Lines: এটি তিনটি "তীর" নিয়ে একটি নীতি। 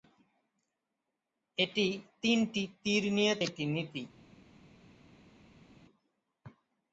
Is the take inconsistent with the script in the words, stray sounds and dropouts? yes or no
no